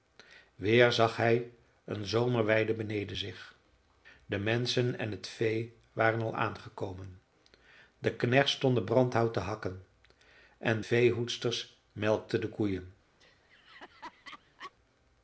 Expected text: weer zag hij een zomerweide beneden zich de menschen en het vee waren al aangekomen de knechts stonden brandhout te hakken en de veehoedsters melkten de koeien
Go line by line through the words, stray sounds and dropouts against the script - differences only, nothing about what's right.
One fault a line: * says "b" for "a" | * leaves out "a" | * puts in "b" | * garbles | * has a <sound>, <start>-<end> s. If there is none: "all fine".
* leaves out "de"
* has a laugh, 13.2-14.7 s